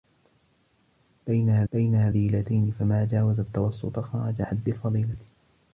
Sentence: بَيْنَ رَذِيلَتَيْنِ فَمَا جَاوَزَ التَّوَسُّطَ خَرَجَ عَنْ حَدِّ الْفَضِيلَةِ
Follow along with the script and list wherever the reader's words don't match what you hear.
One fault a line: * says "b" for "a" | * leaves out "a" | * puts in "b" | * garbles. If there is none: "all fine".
* puts in "بَيْنَ"
* leaves out "عَنْ"